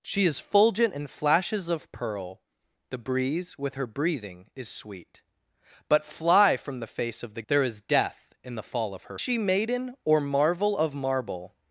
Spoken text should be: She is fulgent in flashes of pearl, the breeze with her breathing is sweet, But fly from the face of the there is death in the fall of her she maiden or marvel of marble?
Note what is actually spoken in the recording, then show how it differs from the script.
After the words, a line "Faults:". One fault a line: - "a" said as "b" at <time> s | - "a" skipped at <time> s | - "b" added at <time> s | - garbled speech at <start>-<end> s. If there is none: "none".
She is fulgent in flashes of pearl, the breeze with her breathing is sweet, But fly from the face of the there is death in the fall of her she maiden or marvel of marble?
Faults:
none